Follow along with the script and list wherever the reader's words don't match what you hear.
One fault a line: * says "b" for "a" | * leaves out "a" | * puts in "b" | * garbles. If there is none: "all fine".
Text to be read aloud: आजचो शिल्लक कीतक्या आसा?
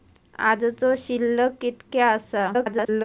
* garbles